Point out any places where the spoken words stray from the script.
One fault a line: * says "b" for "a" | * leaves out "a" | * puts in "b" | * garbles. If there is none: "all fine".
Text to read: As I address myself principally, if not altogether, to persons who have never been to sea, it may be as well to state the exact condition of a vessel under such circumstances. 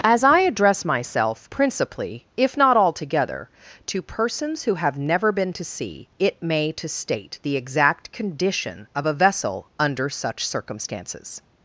* leaves out "be as well"